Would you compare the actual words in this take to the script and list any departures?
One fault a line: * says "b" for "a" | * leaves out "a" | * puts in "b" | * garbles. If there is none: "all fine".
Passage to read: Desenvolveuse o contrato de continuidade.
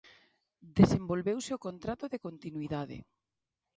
all fine